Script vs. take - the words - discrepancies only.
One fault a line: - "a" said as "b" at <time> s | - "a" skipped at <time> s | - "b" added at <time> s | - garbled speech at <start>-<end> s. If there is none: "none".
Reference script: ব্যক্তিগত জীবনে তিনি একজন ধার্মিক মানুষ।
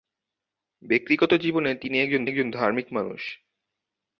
- "একজন" added at 2.3 s